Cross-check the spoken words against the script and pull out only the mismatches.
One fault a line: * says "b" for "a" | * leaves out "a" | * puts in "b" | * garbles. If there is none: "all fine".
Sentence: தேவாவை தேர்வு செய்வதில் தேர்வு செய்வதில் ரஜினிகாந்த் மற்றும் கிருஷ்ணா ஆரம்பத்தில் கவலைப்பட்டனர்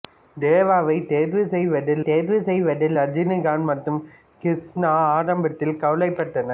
all fine